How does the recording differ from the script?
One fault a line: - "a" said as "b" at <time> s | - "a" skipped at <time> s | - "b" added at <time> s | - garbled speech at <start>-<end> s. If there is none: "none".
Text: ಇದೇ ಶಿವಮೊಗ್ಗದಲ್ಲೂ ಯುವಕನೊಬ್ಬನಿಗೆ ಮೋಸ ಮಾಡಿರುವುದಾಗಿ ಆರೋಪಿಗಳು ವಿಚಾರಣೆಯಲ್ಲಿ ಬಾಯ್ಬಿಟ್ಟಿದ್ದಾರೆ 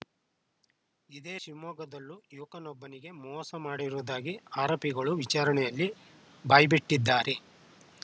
none